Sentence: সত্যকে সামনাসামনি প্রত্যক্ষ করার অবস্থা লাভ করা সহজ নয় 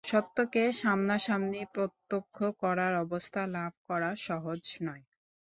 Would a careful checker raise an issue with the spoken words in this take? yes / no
no